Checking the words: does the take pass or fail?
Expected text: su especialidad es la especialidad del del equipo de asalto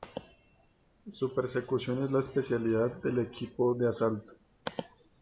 fail